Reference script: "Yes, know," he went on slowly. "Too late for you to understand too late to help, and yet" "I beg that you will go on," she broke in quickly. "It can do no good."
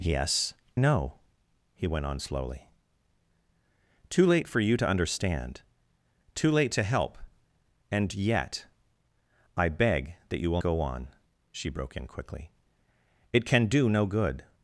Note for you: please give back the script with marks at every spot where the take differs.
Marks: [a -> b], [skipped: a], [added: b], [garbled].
"Yes, know," he went on slowly. "Too late for you to understand too late to help, and yet" "I beg that you will go on," she broke in quickly. "It can do no good."